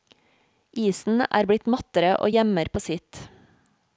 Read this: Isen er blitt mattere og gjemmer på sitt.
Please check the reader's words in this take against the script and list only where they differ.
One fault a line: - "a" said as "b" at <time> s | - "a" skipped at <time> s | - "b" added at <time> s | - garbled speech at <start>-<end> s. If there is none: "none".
none